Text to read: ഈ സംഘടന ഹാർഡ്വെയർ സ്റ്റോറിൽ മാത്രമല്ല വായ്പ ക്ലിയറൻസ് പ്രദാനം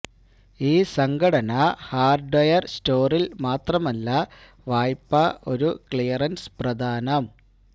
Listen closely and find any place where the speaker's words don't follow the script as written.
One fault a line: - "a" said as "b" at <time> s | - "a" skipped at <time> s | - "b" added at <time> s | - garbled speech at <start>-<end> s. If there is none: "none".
- "ഒരു" added at 5.5 s